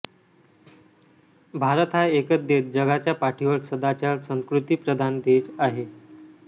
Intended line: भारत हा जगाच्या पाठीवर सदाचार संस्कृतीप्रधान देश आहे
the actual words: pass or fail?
fail